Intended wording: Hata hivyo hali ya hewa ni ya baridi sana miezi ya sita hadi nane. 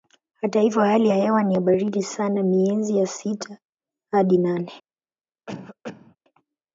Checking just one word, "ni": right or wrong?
right